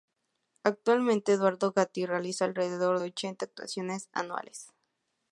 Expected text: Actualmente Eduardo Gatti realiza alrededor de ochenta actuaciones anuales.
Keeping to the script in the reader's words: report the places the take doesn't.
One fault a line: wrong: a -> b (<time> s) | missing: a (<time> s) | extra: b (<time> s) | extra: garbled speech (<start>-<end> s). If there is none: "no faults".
no faults